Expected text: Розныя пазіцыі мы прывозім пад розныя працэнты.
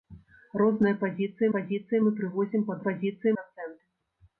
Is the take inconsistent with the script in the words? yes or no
yes